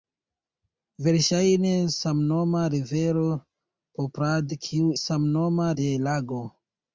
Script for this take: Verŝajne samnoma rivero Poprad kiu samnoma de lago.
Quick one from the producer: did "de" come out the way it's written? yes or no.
yes